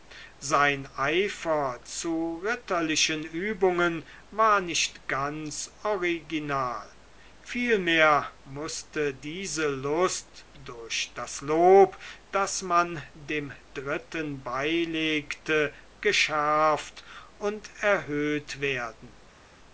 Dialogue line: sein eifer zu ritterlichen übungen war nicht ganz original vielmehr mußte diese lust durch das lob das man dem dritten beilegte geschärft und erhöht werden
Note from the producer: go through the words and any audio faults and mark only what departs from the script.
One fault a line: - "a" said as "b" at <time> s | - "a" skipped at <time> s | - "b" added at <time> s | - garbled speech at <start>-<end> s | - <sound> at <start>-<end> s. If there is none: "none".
none